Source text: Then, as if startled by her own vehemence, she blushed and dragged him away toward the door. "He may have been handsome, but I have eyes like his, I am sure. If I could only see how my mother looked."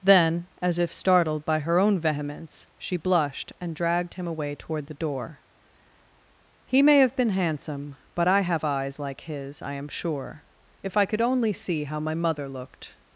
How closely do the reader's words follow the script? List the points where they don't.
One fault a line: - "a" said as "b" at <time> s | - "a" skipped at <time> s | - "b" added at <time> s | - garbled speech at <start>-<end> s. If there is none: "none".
none